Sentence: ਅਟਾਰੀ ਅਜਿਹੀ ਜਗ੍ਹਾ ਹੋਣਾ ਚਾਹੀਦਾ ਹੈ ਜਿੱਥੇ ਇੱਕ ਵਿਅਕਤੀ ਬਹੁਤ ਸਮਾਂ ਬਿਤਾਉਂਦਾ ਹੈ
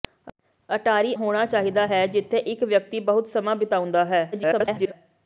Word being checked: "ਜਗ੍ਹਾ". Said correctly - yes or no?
no